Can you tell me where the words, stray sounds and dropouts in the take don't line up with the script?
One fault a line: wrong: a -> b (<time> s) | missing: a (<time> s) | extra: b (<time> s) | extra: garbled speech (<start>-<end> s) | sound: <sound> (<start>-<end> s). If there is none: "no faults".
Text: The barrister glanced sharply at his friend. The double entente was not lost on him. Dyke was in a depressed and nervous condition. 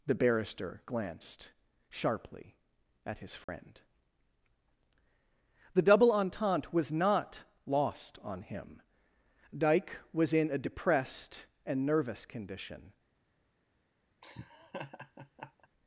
sound: dropout (3.4-3.5 s)
sound: laugh (14.2-15.7 s)